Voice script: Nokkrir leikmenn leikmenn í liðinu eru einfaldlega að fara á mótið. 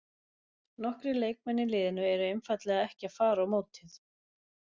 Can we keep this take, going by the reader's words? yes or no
no